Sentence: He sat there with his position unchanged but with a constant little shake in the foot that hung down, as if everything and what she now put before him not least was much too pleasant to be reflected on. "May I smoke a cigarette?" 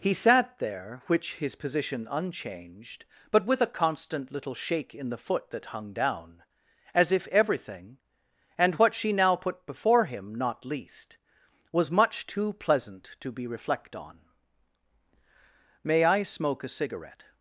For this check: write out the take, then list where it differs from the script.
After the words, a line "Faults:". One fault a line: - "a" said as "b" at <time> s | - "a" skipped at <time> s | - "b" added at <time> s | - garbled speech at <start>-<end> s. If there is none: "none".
He sat there which his position unchanged but with a constant little shake in the foot that hung down, as if everything and what she now put before him not least was much too pleasant to be reflect on. "May I smoke a cigarette?"
Faults:
- "with" said as "which" at 1.1 s
- "reflected" said as "reflect" at 13.5 s